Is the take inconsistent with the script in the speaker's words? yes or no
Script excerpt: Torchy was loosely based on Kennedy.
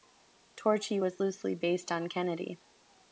no